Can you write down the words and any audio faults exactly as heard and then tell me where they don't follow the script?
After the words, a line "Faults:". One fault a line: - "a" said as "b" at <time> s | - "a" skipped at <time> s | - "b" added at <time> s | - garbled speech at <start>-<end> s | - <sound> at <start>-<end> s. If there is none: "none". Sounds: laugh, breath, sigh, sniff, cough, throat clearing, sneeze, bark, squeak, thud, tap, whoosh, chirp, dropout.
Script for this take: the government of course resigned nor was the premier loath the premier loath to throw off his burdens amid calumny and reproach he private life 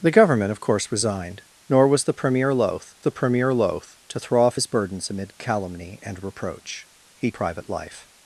the government of course resigned nor was the premier loath the premier loath to throw off his burdens amid calumny and reproach he private life
Faults:
none